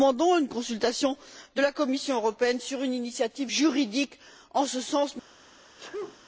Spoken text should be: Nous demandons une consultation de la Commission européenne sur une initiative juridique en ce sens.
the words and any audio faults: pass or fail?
fail